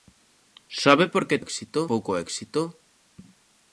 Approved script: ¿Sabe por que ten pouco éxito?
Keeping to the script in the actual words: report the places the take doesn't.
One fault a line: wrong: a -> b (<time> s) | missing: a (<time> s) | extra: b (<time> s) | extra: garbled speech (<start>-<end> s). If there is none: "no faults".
wrong: ten -> éxito (1.4 s)